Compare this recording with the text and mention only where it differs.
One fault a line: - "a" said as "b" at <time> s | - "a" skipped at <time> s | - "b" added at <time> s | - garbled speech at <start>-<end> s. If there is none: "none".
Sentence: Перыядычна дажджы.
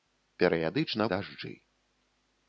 none